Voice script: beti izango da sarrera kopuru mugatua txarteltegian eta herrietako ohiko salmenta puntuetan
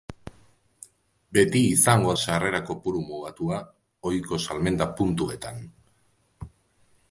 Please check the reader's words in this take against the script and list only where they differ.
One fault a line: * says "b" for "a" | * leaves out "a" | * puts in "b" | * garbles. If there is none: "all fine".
* leaves out "da"
* leaves out "txarteltegian eta herrietako"